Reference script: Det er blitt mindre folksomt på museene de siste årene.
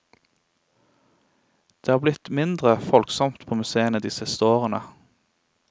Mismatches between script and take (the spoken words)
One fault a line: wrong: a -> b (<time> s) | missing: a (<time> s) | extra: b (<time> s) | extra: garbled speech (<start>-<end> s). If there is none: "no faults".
no faults